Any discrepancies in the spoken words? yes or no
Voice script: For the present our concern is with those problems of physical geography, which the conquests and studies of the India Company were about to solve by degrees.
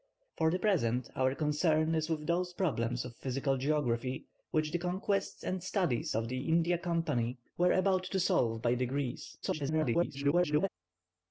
yes